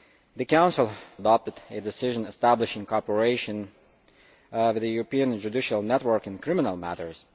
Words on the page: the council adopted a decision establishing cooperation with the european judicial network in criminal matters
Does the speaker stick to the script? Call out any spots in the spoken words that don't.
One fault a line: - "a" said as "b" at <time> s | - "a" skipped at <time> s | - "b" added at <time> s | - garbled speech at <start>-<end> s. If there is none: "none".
none